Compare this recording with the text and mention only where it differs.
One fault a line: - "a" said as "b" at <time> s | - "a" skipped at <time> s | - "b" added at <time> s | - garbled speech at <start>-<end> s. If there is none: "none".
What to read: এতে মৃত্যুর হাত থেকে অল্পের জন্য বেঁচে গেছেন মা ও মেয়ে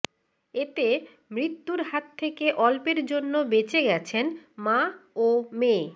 none